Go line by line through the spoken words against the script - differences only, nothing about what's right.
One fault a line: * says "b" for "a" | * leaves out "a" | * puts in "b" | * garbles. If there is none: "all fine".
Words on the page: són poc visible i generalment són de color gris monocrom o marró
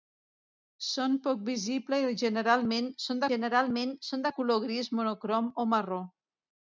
* puts in "generalment són"